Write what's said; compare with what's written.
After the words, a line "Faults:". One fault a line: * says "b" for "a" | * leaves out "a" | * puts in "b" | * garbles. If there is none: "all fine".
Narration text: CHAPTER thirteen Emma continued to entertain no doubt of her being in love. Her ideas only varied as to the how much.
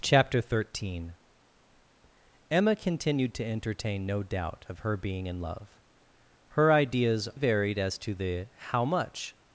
CHAPTER thirteen Emma continued to entertain no doubt of her being in love. Her ideas varied as to the how much.
Faults:
* leaves out "only"